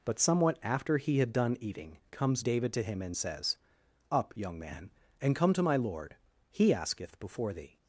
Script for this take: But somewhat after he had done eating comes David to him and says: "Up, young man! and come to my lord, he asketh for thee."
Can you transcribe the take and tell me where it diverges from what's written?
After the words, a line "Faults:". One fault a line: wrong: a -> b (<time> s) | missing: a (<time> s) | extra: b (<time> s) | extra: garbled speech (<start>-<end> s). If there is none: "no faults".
But somewhat after he had done eating comes David to him and says: "Up, young man! and come to my lord, he asketh before thee."
Faults:
wrong: for -> before (7.2 s)